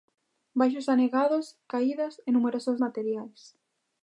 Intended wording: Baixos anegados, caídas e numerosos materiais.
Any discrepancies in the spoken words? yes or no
no